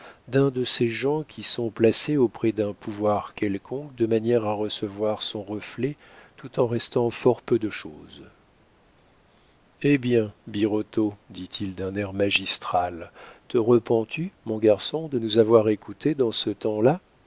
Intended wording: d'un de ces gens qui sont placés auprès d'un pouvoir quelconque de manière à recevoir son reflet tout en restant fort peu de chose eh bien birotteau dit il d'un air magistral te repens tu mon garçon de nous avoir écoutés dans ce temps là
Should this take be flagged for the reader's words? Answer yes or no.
no